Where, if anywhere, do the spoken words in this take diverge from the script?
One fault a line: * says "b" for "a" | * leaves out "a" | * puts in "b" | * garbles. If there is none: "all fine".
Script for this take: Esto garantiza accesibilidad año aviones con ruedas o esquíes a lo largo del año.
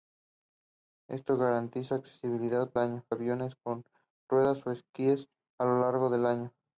all fine